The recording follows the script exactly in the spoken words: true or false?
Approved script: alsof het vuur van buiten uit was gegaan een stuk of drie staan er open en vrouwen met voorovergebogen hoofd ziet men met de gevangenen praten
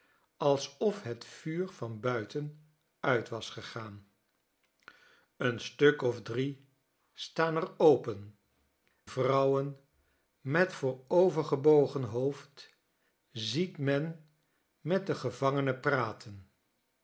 false